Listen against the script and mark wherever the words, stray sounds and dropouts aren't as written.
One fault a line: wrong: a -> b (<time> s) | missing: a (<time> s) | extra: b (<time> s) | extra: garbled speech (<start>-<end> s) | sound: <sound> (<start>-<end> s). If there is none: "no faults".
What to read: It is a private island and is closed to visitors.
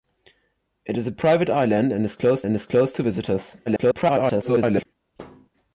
extra: and is closed (2.4 s)
extra: garbled speech (3.7-4.9 s)
sound: thud (5.2-5.5 s)